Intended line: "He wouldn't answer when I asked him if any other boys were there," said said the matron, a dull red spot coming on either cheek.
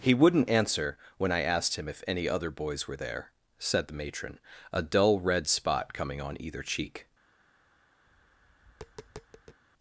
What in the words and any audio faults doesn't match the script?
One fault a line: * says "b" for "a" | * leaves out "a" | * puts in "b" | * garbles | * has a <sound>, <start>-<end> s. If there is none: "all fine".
* leaves out "said"
* has a tap, 8.1-9.6 s